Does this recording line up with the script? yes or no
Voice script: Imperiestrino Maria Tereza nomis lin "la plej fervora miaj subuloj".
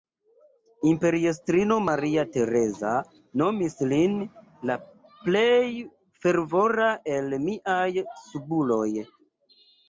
no